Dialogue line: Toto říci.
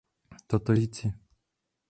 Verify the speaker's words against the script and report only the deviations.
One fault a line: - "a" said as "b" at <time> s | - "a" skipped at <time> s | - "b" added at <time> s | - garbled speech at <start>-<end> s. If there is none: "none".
none